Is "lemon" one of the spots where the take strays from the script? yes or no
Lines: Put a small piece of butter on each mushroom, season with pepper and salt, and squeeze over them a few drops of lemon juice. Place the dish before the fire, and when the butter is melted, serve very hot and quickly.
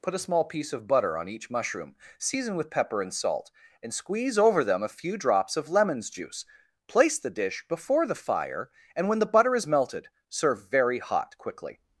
yes